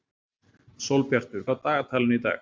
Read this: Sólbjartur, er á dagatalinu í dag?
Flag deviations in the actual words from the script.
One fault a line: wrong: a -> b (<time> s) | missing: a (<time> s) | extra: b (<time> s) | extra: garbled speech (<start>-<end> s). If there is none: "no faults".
no faults